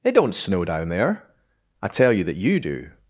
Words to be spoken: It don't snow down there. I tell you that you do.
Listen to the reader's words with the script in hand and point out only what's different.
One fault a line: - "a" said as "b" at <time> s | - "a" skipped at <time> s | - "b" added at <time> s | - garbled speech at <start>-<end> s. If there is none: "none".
none